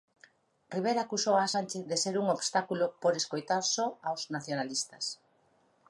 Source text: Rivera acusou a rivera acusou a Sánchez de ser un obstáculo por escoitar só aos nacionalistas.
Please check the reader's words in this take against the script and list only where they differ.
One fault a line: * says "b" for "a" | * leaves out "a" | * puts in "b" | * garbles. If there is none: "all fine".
* leaves out "rivera acusou a"